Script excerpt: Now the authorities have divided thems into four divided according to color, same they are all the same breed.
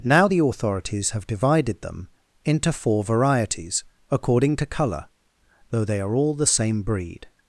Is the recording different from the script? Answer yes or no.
yes